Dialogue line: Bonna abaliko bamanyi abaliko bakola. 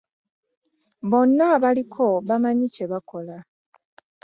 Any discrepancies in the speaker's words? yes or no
yes